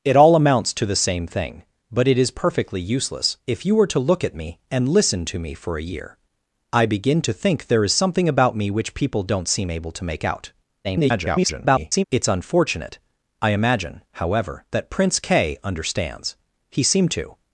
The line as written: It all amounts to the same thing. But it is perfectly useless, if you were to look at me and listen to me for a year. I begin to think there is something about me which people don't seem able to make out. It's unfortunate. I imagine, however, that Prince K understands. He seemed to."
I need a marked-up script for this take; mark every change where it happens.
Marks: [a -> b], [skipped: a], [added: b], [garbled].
It all amounts to the same thing. But it is perfectly useless, if you were to look at me and listen to me for a year. I begin to think there is something about me which people don't seem able to make out. [garbled] It's unfortunate. I imagine, however, that Prince K understands. He seemed to."